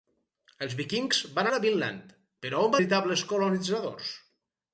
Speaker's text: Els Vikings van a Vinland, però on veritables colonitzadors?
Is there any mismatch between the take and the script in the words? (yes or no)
no